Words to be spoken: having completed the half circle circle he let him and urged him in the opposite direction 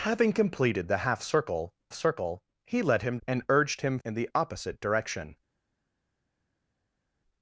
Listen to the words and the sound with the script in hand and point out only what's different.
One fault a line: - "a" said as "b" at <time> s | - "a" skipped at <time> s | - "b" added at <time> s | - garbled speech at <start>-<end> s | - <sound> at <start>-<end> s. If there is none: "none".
none